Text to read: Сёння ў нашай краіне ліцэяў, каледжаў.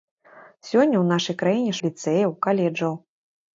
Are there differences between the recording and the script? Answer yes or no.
no